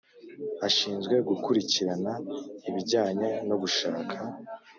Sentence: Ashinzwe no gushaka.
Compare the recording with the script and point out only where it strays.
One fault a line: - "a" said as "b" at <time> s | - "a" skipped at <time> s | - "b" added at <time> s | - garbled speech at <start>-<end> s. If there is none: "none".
- "gukurikirana ibijyanye" added at 1.3 s